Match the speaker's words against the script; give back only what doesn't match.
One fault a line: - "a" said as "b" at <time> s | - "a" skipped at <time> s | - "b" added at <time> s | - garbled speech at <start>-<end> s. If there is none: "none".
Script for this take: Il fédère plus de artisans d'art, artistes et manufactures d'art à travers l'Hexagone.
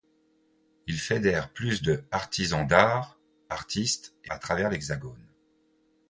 - "manufactures d'art" skipped at 4.3 s